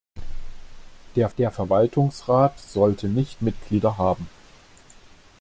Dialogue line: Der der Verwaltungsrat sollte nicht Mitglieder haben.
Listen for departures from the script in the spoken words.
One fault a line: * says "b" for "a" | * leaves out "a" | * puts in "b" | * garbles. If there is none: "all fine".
all fine